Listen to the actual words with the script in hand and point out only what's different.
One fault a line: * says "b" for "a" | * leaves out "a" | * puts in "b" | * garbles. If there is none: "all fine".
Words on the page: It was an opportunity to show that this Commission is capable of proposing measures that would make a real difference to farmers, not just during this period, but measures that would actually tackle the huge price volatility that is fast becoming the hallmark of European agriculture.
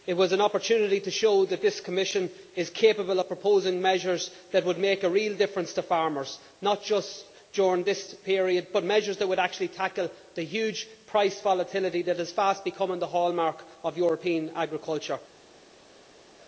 all fine